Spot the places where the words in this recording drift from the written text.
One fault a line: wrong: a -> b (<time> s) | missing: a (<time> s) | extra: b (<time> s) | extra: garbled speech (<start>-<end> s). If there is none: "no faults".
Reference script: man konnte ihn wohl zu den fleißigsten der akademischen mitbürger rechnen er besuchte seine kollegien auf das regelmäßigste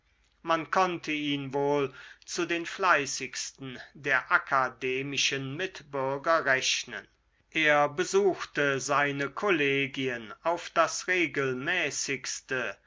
no faults